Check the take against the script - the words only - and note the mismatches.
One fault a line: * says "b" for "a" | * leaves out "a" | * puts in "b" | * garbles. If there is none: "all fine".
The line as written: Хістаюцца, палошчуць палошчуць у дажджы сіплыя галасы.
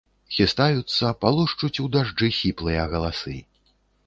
* leaves out "палошчуць"